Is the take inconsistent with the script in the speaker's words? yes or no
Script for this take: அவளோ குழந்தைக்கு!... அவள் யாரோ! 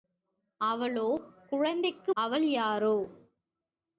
no